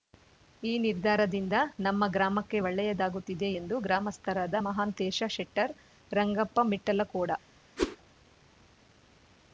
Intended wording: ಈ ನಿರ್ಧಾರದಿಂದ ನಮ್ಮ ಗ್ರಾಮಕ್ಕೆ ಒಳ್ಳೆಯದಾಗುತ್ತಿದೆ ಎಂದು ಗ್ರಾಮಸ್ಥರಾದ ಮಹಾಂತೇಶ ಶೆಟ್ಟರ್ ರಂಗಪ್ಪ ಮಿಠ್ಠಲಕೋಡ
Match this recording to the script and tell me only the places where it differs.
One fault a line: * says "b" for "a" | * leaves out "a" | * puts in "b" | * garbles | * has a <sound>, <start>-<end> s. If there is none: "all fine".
* has a whoosh, 7.8-8.0 s